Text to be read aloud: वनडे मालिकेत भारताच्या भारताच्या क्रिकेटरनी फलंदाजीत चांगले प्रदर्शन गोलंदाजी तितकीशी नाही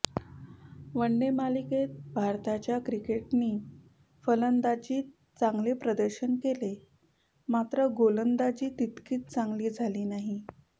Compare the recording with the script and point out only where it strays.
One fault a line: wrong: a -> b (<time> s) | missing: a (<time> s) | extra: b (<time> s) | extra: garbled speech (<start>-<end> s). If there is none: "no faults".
missing: भारताच्या (2.8 s)
extra: केले मात्र (6.4 s)
extra: चांगली झाली (9.2 s)